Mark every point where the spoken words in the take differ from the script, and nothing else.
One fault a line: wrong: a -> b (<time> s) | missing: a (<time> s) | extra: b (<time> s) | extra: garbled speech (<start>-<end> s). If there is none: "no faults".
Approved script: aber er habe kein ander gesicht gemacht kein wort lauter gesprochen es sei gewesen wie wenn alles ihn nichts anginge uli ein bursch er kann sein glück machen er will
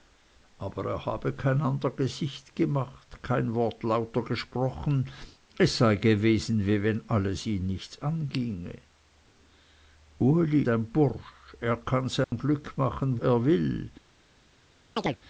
no faults